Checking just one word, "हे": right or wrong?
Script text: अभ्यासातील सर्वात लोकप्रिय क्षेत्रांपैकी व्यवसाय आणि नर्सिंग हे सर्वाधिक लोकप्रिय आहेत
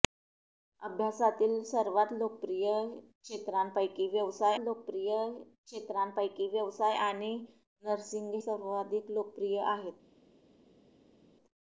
wrong